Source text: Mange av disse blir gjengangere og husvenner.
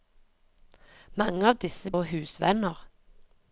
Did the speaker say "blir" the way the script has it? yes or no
no